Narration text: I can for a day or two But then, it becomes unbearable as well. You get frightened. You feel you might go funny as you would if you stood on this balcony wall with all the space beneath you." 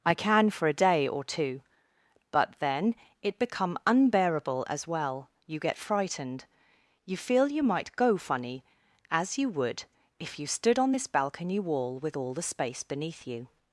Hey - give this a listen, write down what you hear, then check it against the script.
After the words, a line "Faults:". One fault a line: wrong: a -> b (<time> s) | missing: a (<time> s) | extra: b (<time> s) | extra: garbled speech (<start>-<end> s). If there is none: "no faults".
I can for a day or two But then, it become unbearable as well. You get frightened. You feel you might go funny as you would if you stood on this balcony wall with all the space beneath you."
Faults:
wrong: becomes -> become (3.4 s)